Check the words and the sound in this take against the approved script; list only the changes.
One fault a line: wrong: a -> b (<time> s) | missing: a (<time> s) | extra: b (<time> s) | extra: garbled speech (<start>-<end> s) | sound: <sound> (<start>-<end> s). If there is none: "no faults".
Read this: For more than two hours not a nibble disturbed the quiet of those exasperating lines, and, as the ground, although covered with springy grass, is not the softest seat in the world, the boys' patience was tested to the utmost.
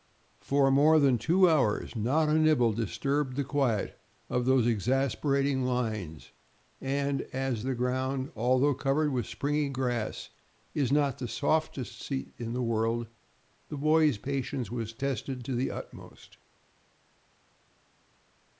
no faults